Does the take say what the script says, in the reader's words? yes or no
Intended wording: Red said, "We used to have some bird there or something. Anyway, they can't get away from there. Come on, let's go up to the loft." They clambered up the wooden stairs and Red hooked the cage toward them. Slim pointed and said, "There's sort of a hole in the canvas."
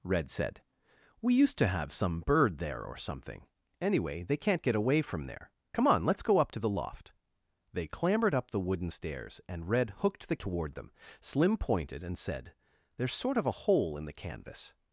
no